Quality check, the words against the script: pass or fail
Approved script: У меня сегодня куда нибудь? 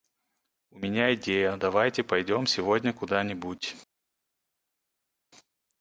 fail